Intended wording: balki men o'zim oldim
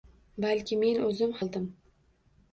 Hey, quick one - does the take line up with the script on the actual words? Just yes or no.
yes